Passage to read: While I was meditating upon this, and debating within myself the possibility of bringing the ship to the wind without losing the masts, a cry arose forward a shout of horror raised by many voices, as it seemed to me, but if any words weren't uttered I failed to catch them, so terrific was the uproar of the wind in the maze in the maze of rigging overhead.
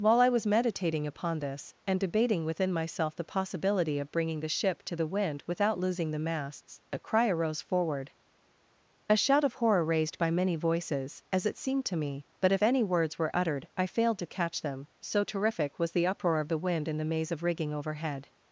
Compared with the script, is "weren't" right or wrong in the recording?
wrong